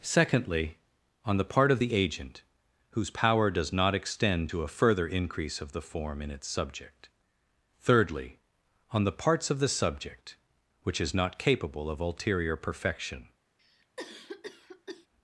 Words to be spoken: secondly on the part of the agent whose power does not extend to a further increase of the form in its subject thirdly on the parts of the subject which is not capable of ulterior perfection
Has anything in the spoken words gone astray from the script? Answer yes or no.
no